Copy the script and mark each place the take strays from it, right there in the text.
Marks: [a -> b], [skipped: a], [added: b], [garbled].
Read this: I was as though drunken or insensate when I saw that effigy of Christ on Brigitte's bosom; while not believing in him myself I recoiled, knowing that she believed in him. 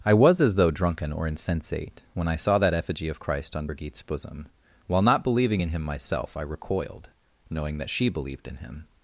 I was as though drunken or insensate when I saw that effigy of Christ on Brigitte's bosom; while not believing in him myself I recoiled, knowing that she believed in him.